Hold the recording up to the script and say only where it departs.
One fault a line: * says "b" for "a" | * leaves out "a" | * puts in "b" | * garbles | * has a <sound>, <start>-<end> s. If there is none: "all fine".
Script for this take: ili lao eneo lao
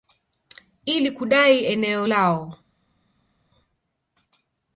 * says "kudai" for "lao"